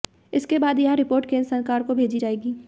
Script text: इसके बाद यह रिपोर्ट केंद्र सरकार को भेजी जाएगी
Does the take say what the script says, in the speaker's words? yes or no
yes